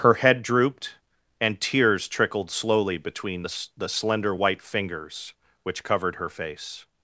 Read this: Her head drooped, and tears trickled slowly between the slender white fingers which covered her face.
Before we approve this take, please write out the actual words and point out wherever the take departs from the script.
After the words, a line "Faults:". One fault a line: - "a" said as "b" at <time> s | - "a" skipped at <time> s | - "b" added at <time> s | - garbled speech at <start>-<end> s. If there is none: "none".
Her head drooped, and tears trickled slowly between the the slender white fingers which covered her face.
Faults:
- "the" added at 3.7 s